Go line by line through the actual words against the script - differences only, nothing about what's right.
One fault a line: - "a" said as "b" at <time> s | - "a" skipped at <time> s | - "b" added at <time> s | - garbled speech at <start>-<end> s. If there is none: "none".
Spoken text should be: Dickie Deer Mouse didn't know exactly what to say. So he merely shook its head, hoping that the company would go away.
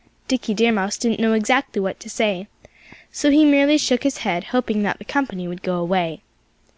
- "its" said as "his" at 4.0 s